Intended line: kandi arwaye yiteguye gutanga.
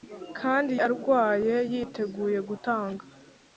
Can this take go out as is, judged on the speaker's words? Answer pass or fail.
pass